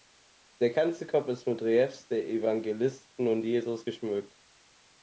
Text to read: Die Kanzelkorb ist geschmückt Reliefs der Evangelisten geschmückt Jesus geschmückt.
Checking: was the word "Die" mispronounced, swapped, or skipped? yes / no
yes